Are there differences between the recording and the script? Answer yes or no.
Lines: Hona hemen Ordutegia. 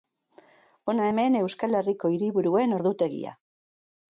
yes